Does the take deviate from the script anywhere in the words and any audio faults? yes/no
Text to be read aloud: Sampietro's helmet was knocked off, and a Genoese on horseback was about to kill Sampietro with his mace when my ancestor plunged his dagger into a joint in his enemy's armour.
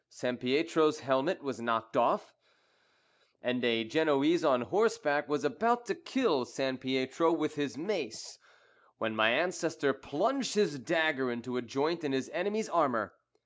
no